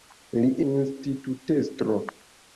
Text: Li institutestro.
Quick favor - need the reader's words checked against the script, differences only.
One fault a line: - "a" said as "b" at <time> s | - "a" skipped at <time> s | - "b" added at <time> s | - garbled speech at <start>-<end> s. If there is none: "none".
none